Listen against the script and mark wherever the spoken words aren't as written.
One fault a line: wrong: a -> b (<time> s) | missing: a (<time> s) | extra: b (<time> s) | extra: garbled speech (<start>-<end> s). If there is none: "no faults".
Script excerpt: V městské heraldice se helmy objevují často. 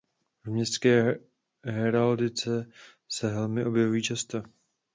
no faults